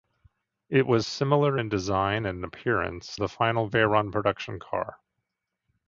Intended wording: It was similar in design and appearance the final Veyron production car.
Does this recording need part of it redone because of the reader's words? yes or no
no